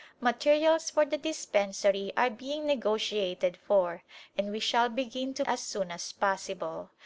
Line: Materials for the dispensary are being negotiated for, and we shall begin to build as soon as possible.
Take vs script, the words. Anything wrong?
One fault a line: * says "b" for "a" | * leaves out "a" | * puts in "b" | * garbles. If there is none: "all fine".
* leaves out "build"